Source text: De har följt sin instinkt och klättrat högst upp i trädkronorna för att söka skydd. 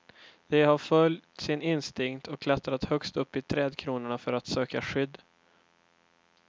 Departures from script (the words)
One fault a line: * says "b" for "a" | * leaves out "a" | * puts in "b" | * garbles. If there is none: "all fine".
all fine